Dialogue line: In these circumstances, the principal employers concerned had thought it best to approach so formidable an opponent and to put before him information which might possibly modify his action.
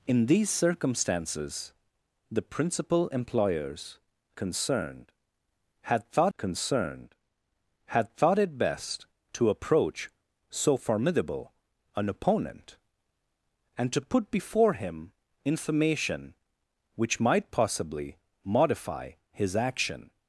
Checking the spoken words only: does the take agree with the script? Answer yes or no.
no